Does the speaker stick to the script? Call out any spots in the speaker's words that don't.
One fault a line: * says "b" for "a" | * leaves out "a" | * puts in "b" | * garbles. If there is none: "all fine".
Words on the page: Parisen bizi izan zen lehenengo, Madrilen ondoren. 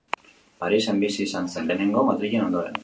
all fine